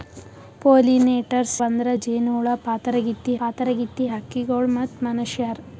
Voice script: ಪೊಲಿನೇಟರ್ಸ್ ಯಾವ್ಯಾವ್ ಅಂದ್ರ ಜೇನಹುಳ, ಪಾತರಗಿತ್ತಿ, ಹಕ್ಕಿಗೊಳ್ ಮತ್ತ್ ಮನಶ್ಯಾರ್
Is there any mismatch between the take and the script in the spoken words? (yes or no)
yes